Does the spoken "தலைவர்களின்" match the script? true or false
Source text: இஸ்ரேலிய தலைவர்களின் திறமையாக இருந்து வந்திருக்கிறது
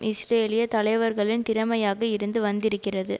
true